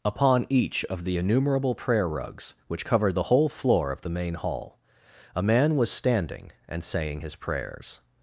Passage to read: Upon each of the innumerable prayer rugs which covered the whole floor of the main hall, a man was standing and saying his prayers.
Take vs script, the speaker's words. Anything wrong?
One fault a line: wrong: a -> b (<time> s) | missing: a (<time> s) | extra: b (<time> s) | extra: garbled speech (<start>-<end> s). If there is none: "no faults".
no faults